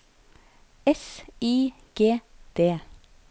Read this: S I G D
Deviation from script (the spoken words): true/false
false